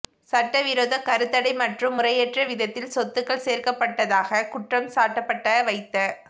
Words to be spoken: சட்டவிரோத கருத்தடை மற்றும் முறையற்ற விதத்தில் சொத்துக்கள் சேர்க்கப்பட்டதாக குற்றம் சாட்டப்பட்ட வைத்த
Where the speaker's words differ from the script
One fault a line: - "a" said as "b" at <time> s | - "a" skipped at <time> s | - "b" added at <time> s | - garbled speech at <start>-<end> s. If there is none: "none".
none